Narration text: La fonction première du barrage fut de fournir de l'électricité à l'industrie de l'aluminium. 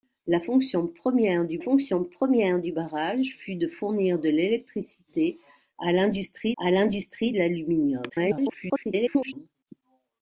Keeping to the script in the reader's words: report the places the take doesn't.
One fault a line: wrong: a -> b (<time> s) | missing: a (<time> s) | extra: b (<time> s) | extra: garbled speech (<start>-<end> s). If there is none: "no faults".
extra: fonction première du (1.6 s)
extra: à l'industrie (6.6 s)
extra: garbled speech (8.1-9.3 s)